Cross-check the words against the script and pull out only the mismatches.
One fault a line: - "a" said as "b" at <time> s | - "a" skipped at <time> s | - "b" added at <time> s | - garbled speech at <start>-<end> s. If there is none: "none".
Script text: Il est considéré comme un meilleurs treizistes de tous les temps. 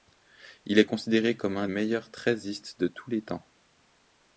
none